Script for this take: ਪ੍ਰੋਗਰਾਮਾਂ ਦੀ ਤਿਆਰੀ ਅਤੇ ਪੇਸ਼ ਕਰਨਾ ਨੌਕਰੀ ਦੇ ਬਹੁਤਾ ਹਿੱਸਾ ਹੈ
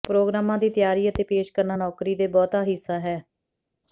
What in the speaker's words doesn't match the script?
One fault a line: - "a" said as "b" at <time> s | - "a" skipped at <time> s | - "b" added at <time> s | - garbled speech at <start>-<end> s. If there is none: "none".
none